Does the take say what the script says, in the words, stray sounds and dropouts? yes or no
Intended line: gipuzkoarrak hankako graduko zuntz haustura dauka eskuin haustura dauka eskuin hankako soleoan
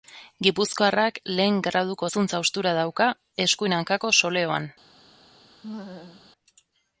no